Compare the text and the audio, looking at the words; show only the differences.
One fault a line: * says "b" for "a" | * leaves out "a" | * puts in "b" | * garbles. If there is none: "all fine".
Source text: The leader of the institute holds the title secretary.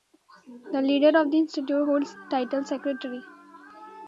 all fine